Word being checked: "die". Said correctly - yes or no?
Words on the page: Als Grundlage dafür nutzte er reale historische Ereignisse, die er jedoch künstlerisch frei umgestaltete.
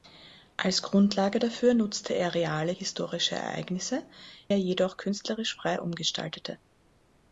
no